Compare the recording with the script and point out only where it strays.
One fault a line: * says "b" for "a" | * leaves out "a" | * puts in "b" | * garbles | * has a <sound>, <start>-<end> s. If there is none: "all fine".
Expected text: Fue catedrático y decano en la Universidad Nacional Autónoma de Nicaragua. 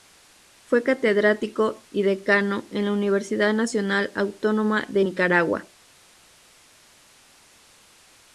all fine